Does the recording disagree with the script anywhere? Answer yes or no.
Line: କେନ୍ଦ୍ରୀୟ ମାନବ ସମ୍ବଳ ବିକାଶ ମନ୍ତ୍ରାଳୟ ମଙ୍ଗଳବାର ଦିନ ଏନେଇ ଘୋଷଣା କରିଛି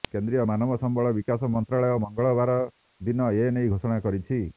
no